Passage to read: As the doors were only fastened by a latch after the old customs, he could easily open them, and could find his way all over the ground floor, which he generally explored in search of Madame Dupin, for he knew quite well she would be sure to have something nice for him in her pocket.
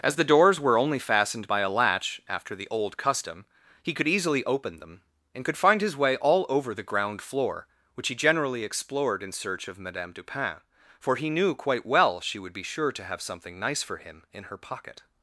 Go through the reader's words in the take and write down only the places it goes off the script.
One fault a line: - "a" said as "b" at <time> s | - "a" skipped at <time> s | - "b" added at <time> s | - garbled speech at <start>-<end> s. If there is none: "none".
- "customs" said as "custom" at 3.0 s